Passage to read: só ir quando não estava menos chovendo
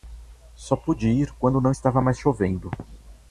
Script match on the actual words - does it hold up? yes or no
no